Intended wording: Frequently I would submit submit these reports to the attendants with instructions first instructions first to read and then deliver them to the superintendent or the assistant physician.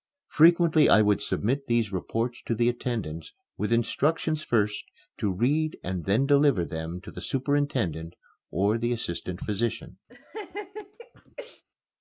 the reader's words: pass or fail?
fail